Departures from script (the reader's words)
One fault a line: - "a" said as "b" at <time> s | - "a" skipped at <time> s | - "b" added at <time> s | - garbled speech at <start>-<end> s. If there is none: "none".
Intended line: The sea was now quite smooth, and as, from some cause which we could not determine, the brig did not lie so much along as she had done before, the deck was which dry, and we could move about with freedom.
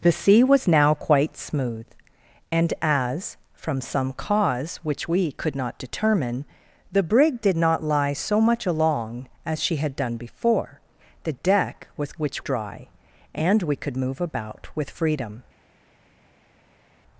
none